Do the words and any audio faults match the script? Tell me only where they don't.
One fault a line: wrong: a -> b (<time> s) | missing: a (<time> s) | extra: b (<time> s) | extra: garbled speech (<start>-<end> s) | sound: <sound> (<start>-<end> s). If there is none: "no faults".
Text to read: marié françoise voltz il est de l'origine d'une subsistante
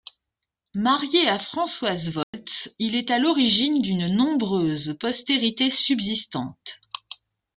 extra: à (1.3 s)
sound: dropout (2.2-2.3 s)
wrong: de -> à (3.1 s)
extra: nombreuse postérité (4.1 s)